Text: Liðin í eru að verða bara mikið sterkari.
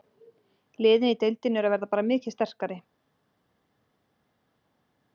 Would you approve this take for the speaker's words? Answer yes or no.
no